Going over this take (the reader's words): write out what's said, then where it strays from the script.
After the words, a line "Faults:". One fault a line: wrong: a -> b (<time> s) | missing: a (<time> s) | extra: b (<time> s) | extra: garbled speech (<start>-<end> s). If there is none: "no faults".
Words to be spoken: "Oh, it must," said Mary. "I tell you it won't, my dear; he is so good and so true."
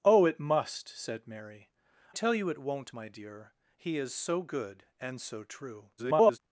"Oh, it must," said Mary. "tell you it won't, my dear; he is so good and so true." [garbled]
Faults:
missing: I (1.7 s)
extra: garbled speech (6.0-6.4 s)